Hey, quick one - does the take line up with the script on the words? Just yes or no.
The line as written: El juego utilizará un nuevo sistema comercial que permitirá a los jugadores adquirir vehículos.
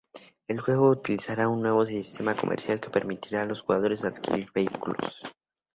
yes